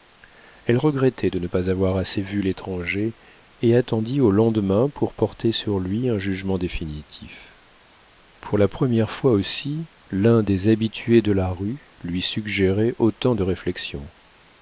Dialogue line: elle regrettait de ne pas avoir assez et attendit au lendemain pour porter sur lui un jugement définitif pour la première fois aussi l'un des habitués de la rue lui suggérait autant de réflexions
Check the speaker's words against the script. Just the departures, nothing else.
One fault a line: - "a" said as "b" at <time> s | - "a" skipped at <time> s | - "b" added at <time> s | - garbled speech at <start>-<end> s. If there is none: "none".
- "vu l'étranger" added at 2.2 s